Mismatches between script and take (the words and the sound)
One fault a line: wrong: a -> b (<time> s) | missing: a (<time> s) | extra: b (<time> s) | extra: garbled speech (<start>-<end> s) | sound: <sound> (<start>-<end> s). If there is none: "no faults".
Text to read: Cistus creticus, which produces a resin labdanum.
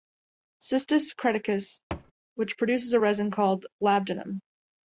sound: thud (1.9-2.1 s)
extra: called (3.3 s)